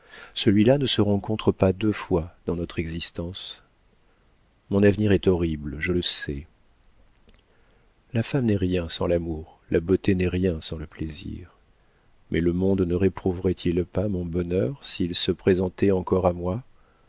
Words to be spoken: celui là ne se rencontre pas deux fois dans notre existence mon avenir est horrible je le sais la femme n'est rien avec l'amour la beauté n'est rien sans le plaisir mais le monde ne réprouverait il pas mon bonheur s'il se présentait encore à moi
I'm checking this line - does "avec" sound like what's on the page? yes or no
no